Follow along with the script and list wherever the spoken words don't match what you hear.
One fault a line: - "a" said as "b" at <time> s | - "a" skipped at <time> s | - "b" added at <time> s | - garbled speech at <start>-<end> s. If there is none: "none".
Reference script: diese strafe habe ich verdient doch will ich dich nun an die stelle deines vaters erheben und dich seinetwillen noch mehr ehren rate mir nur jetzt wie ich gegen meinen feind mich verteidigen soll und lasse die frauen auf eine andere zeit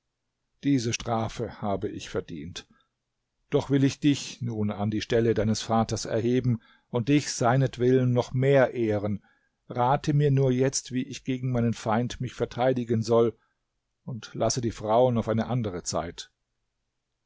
none